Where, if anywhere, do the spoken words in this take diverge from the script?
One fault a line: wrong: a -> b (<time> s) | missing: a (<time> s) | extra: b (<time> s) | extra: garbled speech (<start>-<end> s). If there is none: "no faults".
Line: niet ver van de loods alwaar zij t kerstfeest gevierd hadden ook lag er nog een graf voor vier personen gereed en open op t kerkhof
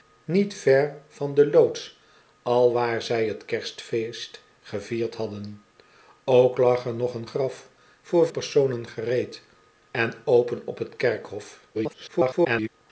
missing: vier (8.3 s)
extra: garbled speech (11.7-12.7 s)